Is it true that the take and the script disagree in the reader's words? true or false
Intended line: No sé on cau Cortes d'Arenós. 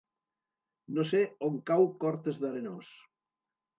false